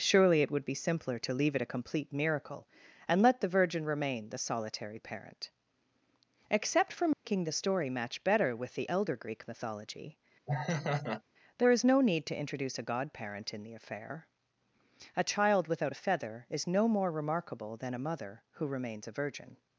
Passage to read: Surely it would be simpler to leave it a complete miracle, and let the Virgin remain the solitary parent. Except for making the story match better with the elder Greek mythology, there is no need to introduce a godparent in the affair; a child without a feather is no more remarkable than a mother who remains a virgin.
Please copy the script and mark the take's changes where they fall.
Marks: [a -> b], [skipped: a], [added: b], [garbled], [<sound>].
Surely it would be simpler to leave it a complete miracle, and let the Virgin remain the solitary parent. Except for making [dropout] the story match better with the elder Greek mythology, [laugh] there is no need to introduce a godparent in the affair; a child without a feather is no more remarkable than a mother who remains a virgin.